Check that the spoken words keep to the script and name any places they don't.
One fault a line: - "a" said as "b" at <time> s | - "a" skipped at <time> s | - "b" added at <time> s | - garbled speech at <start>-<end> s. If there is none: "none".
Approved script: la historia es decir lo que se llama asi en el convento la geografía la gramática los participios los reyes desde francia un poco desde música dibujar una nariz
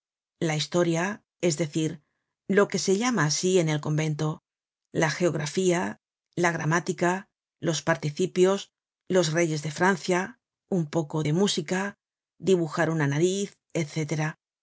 - "desde" said as "de" at 9.6 s
- "desde" said as "de" at 11.2 s